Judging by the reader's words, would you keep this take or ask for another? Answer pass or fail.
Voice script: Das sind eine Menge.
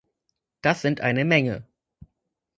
pass